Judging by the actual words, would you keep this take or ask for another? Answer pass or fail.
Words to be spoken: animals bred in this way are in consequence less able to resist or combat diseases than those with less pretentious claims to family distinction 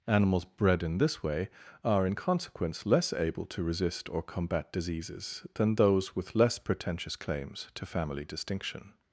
pass